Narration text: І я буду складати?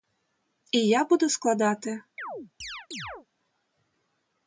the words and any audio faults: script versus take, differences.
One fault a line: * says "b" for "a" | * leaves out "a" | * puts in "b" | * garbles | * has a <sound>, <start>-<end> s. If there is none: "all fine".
* has a chirp, 2.2-3.3 s